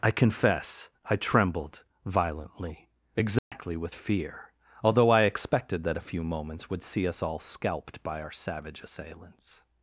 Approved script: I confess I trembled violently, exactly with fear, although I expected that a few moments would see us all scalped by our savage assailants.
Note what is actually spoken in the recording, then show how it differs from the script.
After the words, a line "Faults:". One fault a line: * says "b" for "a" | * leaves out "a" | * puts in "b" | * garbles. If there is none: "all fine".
I confess I trembled violently, exactly with fear, although I expected that a few moments would see us all scalped by our savage assailants.
Faults:
all fine